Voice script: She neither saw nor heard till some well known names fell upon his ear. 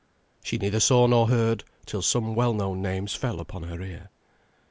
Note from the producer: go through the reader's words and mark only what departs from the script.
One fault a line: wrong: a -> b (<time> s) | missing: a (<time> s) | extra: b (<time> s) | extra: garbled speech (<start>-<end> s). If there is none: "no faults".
wrong: his -> her (3.6 s)